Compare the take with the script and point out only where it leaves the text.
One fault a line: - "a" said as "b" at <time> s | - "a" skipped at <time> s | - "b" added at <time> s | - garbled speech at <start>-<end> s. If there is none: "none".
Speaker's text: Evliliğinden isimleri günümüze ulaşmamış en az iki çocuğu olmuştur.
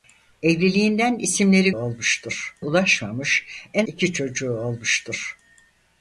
- "günümüze" said as "olmuştur" at 1.7 s
- "az" skipped at 3.9 s